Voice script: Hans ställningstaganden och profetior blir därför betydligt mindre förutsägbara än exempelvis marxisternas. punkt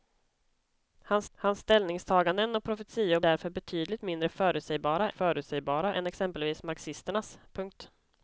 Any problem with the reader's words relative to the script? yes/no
yes